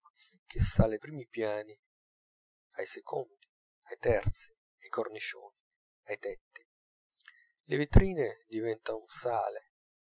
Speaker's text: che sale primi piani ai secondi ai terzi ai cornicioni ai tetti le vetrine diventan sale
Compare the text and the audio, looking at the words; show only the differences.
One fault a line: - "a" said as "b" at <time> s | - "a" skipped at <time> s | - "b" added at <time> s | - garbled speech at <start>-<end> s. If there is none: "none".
none